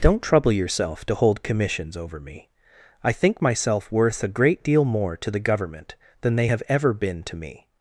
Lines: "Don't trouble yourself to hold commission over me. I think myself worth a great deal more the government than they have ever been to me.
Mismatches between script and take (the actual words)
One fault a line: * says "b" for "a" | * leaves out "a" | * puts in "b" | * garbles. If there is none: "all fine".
* says "commissions" for "commission"
* puts in "to"